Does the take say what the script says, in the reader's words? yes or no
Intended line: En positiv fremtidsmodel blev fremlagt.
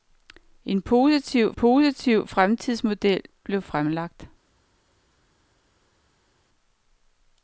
no